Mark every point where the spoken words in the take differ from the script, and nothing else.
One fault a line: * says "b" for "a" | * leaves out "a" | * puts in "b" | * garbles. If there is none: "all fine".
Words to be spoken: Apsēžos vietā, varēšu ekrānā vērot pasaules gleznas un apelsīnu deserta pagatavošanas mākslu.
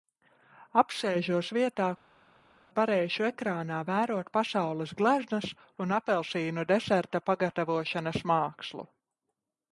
all fine